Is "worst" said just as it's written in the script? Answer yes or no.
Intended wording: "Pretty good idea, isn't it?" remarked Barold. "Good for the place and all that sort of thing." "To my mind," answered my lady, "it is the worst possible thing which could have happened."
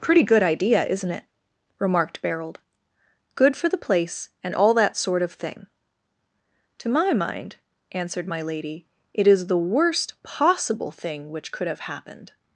yes